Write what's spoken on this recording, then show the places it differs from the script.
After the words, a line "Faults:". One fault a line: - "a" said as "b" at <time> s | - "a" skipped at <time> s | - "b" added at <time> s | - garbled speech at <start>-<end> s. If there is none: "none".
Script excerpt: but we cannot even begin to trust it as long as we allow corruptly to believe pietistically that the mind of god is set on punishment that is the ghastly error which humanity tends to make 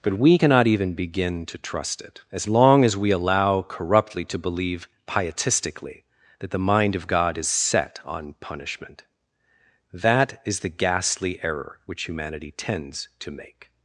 but we cannot even begin to trust it as long as we allow corruptly to believe pietistically that the mind of god is set on punishment that is the ghastly error which humanity tends to make
Faults:
none